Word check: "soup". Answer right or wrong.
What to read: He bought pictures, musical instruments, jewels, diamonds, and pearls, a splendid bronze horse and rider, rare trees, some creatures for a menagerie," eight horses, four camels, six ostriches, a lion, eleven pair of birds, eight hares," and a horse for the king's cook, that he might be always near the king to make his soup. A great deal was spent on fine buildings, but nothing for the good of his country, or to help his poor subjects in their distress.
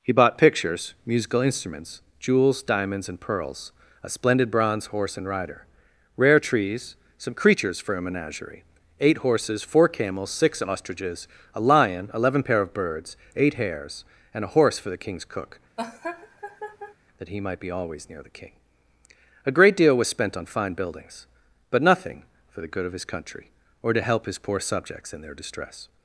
wrong